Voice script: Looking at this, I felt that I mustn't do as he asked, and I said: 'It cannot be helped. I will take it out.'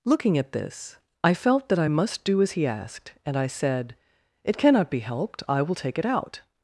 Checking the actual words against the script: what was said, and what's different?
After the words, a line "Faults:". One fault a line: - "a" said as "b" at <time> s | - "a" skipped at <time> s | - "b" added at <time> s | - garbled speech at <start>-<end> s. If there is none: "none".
Looking at this, I felt that I must do as he asked, and I said: 'It cannot be helped. I will take it out.'
Faults:
- "mustn't" said as "must" at 1.9 s